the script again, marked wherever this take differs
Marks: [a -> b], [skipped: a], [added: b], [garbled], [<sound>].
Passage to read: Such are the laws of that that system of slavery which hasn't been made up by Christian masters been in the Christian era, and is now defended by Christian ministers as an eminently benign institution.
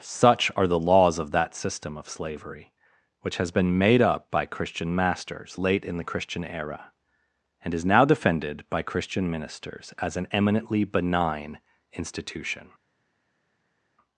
Such are the laws of that [skipped: that] system of slavery which [hasn't -> has] been made up by Christian masters [been -> late] in the Christian era, and is now defended by Christian ministers as an eminently benign institution.